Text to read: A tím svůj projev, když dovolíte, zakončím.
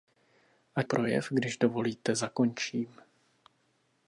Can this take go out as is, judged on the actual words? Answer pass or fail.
fail